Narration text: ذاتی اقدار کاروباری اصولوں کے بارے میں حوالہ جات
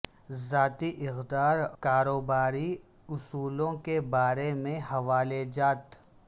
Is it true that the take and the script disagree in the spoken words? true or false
false